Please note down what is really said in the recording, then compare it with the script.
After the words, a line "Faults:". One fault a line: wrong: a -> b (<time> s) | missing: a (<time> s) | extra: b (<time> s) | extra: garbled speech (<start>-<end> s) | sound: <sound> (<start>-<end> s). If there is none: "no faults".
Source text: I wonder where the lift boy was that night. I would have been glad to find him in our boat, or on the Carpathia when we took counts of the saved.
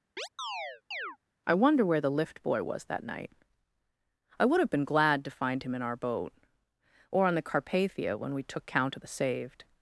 I wonder where the lift boy was that night. I would have been glad to find him in our boat, or on the Carpathia when we took count of the saved.
Faults:
sound: chirp (0.2-1.2 s)
wrong: counts -> count (8.6 s)